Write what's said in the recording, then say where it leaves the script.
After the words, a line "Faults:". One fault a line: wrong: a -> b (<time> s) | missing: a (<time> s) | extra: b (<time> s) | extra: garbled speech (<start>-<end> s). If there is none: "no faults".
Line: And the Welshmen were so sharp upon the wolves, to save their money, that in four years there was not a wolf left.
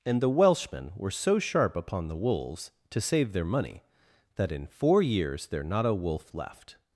And the Welshmen were so sharp upon the wolves, to save their money, that in four years there not a wolf left.
Faults:
missing: was (5.6 s)